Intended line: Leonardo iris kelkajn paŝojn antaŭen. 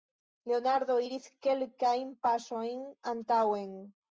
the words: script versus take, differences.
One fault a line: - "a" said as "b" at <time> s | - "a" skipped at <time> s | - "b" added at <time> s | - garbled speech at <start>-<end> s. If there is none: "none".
none